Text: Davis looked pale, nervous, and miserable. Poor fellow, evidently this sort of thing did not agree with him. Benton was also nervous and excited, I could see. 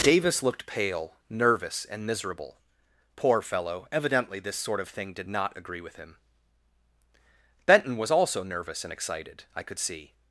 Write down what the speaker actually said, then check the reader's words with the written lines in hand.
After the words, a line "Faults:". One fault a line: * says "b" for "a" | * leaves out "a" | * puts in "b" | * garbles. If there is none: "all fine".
Davis looked pale, nervous, and miserable. Poor fellow, evidently this sort of thing did not agree with him. Benton was also nervous and excited, I could see.
Faults:
all fine